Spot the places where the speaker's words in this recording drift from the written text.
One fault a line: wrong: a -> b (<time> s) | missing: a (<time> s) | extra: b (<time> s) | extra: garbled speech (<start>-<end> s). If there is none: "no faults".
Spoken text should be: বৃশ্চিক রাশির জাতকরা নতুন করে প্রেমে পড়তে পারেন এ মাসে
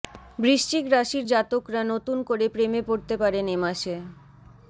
no faults